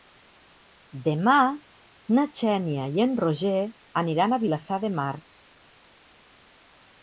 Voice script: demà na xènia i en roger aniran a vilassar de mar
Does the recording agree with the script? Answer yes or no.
yes